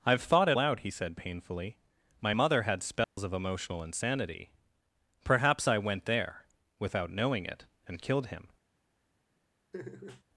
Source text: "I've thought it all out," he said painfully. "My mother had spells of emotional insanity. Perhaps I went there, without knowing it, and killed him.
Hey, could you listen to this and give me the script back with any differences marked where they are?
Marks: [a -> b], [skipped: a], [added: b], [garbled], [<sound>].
"I've thought it [skipped: all] out," he said painfully. "My mother had spells [dropout] of emotional insanity. Perhaps I went there, without knowing it, and killed him. [laugh]